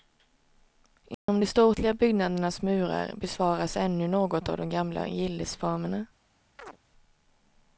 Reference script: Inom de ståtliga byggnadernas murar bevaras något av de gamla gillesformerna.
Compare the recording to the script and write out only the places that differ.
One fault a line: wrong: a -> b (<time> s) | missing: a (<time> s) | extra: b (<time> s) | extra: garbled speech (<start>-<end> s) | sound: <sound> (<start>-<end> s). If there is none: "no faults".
sound: dropout (1.1-1.3 s)
extra: ännu (3.8 s)
sound: chirp (6.6-6.8 s)